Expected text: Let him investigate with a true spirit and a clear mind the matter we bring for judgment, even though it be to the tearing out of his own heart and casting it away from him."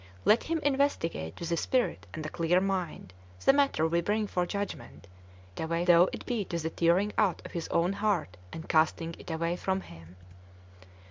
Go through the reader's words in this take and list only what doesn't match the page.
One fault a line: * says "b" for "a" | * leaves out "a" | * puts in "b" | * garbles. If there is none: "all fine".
* leaves out "true"
* says "away" for "even"